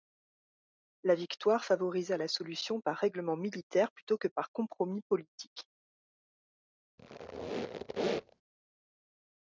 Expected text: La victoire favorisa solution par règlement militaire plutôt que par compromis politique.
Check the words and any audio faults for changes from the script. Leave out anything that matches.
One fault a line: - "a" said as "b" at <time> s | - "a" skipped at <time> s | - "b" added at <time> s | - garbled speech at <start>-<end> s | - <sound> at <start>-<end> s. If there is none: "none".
- "la" added at 2.2 s
- squeak at 7.0-8.4 s